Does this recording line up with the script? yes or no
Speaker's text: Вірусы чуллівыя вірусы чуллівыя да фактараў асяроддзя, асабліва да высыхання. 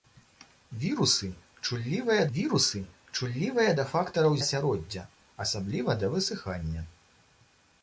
yes